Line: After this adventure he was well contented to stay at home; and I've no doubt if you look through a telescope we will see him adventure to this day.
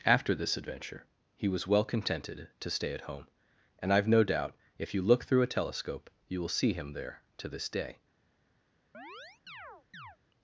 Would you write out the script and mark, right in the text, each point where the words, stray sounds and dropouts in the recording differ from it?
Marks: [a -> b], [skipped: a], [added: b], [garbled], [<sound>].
After this adventure he was well contented to stay at home; and I've no doubt if you look through a telescope [we -> you] will see him [adventure -> there] to this day. [chirp]